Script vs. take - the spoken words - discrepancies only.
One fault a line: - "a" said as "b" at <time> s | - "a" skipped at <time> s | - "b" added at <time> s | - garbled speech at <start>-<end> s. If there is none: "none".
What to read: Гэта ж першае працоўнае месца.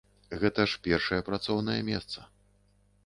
none